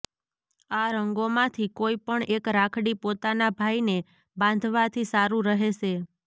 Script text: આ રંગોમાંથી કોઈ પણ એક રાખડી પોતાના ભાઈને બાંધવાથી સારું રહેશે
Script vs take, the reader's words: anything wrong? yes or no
no